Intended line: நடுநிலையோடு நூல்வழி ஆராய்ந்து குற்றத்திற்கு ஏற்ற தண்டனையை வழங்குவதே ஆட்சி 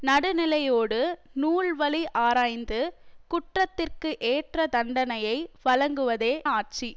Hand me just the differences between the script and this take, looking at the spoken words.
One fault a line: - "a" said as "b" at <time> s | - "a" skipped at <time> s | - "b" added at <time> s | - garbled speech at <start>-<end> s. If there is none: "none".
none